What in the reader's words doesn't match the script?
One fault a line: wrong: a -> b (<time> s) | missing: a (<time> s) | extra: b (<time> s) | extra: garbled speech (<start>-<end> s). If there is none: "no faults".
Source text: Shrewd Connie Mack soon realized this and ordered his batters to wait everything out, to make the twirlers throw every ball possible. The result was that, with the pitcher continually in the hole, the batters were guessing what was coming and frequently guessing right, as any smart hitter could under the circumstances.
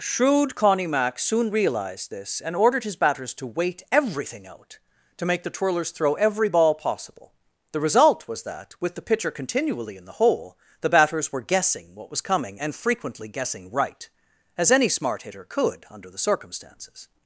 no faults